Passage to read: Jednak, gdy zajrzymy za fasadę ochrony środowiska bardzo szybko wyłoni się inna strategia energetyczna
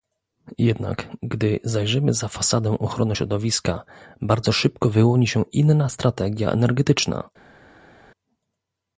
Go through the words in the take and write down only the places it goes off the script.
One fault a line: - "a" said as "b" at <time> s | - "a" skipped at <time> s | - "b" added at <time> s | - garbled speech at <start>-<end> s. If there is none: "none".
none